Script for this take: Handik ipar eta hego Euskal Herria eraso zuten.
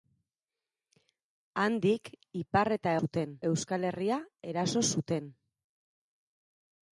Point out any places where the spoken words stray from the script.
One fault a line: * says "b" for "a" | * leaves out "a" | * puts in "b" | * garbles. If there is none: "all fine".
* says "zuten" for "hego"